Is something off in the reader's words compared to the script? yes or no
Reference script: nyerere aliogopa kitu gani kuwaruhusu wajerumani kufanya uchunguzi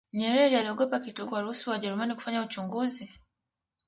yes